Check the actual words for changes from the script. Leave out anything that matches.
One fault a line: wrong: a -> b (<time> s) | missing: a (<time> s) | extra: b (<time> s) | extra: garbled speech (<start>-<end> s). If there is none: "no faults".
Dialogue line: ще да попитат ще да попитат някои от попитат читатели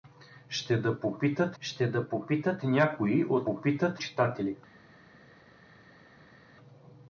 no faults